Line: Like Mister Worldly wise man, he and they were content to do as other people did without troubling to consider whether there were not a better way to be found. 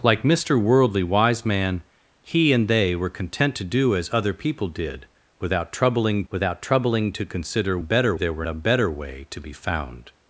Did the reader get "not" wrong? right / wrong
wrong